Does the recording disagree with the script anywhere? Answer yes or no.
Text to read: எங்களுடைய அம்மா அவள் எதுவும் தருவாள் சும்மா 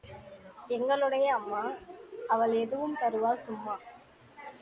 no